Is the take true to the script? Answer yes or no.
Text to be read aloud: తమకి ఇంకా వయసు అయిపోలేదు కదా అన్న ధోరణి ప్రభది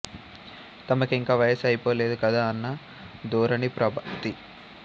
yes